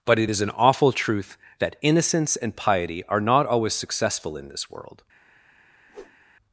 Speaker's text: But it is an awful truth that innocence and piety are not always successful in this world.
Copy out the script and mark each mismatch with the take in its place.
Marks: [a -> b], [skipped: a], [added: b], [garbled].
But it is an awful truth that innocence and piety are not always successful in this world.